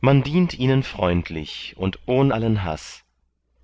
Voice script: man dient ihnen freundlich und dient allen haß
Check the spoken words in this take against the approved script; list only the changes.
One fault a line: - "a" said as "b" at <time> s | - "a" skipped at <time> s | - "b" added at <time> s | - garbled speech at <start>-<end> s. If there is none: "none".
- "dient" said as "ohn" at 2.1 s